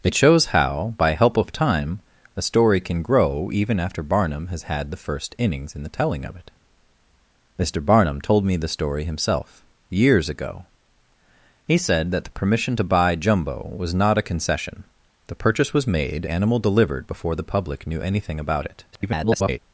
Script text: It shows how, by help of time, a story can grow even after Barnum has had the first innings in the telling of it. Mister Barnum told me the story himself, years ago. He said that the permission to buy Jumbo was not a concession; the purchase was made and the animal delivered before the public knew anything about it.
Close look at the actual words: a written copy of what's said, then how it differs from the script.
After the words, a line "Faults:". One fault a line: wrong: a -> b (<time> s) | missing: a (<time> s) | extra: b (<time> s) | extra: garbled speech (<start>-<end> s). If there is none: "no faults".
It shows how, by help of time, a story can grow even after Barnum has had the first innings in the telling of it. Mister Barnum told me the story himself, years ago. He said that the permission to buy Jumbo was not a concession; the purchase was made animal delivered before the public knew anything about it. [garbled]
Faults:
missing: and the (16.3 s)
extra: garbled speech (18.9-19.6 s)